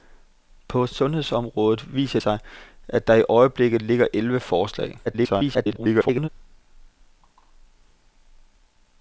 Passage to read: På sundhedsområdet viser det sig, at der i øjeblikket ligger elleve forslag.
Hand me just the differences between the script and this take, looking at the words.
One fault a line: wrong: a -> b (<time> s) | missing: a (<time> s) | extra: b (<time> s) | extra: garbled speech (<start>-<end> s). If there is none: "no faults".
missing: det (2.2 s)
extra: garbled speech (5.1-6.3 s)